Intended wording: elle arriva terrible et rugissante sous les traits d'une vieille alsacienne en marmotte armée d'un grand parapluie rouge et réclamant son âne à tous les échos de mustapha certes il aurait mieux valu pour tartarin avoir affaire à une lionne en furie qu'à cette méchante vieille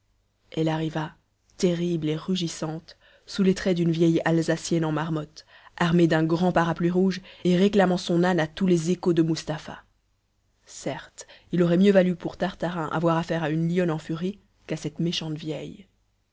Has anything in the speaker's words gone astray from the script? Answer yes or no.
no